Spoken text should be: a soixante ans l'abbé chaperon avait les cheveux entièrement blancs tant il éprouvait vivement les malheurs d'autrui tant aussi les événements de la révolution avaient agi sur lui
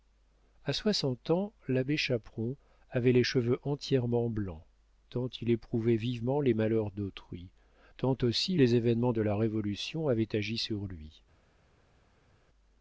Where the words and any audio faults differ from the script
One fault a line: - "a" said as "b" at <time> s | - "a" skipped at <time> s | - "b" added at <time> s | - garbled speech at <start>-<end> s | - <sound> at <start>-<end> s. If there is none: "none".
none